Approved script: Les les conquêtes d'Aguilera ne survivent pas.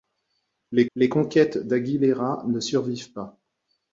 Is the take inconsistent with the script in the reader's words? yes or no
no